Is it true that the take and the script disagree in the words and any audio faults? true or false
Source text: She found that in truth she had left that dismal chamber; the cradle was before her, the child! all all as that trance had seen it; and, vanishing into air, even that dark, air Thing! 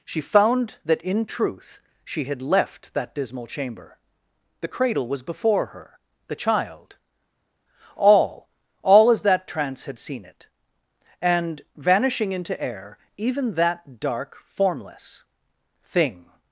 true